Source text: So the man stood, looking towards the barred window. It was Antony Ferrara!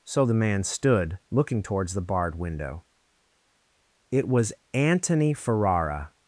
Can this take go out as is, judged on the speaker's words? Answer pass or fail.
pass